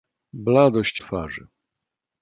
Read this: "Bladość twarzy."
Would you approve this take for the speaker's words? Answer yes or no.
yes